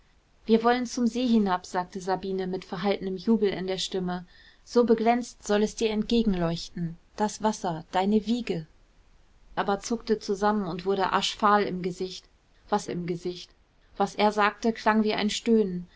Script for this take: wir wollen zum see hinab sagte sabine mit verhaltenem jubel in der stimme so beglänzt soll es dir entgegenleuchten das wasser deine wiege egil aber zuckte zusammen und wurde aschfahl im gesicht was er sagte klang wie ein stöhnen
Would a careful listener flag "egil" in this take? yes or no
yes